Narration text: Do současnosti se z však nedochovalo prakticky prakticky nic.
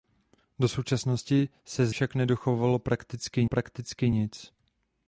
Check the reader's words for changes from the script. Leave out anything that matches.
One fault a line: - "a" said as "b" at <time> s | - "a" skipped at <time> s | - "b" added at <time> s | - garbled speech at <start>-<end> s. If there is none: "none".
none